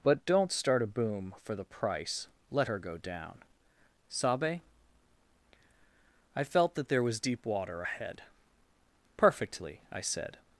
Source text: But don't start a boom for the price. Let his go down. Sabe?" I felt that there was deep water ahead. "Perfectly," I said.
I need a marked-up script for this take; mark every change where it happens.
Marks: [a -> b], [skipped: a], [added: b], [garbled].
But don't start a boom for the price. Let [his -> her] go down. Sabe?" I felt that there was deep water ahead. "Perfectly," I said.